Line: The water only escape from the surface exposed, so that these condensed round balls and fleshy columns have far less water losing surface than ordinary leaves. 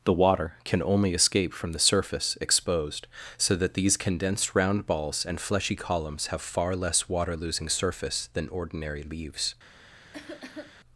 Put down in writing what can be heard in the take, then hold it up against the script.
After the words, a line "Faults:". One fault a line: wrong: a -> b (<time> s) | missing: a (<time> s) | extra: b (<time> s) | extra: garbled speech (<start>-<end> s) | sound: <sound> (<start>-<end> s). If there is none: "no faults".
The water can only escape from the surface exposed, so that these condensed round balls and fleshy columns have far less water losing surface than ordinary leaves.
Faults:
extra: can (0.7 s)
sound: cough (10.1-10.7 s)